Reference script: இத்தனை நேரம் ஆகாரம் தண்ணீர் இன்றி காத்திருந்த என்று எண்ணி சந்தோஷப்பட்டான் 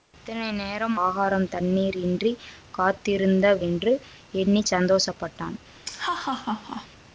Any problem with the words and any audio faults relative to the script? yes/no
yes